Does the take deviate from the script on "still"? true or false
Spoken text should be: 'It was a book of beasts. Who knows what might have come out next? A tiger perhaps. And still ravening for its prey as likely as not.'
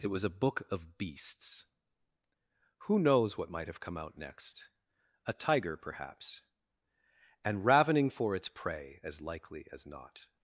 true